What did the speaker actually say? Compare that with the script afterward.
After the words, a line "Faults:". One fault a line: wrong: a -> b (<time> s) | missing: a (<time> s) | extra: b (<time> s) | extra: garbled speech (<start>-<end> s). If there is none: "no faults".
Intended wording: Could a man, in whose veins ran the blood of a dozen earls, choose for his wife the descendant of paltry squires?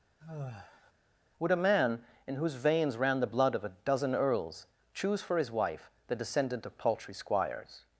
Would a man, in whose veins ran the blood of a dozen earls, choose for his wife the descendant of paltry squires?
Faults:
wrong: Could -> Would (1.4 s)